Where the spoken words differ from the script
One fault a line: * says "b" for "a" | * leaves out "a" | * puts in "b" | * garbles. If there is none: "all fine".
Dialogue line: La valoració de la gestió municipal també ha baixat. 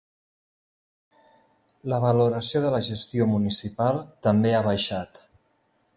all fine